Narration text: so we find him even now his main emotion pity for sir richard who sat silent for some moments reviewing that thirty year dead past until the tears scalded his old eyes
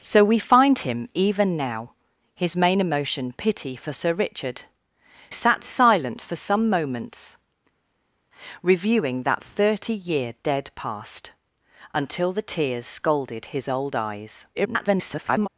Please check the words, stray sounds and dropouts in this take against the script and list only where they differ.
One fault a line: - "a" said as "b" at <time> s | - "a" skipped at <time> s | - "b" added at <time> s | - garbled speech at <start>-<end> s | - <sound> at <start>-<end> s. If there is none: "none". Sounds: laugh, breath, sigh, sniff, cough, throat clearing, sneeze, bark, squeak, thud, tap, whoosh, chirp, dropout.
- "who" skipped at 4.6 s
- garbled speech at 14.5-15.5 s